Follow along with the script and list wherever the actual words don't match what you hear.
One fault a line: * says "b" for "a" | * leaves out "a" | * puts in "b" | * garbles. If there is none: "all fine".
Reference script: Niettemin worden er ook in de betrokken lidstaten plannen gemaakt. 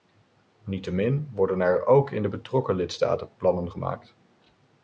all fine